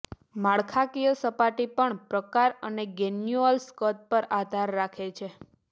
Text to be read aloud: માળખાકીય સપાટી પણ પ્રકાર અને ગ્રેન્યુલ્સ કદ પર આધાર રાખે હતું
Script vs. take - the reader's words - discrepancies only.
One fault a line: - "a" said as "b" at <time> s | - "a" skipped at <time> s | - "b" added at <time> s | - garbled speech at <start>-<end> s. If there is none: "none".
- "હતું" said as "છે" at 5.2 s